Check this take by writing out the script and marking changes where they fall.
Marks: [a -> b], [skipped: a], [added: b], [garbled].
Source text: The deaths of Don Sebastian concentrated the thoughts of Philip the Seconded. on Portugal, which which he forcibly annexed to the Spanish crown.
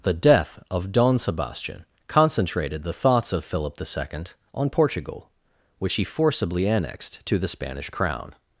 The [deaths -> death] of Don Sebastian concentrated the thoughts of Philip the [Seconded. -> Second] on Portugal, which [skipped: which] he forcibly annexed to the Spanish crown.